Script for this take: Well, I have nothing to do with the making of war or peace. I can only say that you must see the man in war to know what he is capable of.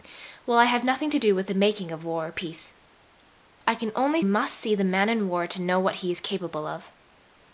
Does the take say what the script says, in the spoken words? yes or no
no